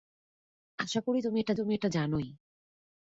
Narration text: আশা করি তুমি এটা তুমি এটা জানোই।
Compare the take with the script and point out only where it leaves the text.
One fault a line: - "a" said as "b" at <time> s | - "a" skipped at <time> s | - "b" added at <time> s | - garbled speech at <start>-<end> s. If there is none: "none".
none